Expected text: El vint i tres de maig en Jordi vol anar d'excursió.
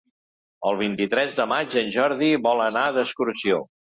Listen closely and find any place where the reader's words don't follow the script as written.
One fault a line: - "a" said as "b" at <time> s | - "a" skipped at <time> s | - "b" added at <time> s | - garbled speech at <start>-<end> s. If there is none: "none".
none